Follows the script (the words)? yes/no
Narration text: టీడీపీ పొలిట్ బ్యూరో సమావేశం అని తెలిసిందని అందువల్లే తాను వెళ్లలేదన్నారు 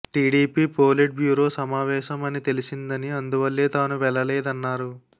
yes